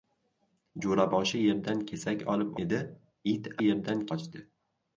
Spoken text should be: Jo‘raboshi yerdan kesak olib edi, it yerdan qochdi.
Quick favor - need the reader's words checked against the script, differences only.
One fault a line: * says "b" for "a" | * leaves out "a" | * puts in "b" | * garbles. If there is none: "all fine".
all fine